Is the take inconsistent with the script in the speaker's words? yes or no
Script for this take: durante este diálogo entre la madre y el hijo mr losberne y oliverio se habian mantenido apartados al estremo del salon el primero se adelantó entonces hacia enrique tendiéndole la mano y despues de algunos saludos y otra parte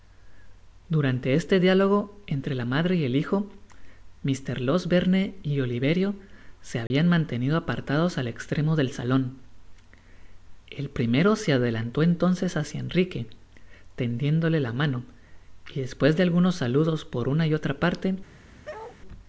yes